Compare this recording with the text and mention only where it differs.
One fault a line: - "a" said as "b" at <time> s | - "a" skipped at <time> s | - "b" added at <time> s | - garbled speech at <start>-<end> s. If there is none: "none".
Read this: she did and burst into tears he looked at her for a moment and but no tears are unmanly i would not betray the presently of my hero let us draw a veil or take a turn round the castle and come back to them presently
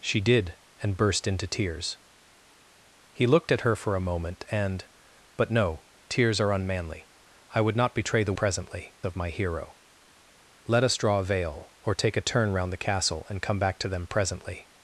none